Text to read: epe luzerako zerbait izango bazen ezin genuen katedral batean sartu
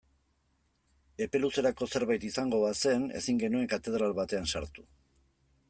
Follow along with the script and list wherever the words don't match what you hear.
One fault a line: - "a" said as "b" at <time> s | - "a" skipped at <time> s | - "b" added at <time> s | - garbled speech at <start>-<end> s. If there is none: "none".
none